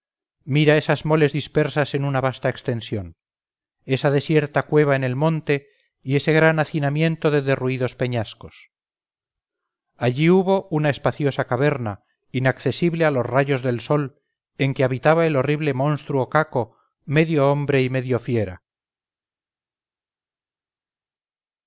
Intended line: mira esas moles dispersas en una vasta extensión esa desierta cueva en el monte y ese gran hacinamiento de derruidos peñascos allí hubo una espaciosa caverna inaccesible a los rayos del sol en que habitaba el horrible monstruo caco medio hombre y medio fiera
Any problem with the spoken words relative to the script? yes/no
no